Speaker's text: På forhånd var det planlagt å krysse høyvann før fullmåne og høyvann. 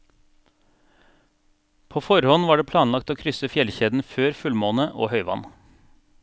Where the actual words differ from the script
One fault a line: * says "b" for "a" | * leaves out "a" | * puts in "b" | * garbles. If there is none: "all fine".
* says "fjellkjeden" for "høyvann"